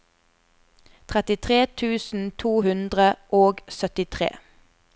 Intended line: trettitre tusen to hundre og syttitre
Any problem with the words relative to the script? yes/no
no